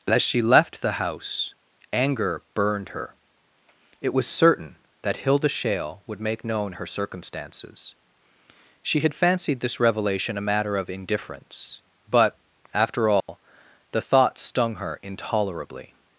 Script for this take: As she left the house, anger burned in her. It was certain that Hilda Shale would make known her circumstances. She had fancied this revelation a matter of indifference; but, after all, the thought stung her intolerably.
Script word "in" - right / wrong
wrong